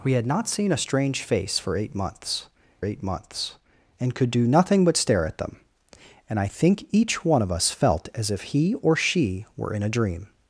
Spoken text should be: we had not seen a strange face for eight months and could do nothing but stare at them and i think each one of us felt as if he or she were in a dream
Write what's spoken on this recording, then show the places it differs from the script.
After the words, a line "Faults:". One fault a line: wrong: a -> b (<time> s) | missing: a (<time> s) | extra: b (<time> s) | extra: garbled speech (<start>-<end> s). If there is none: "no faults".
we had not seen a strange face for eight months eight months and could do nothing but stare at them and i think each one of us felt as if he or she were in a dream
Faults:
extra: eight months (2.8 s)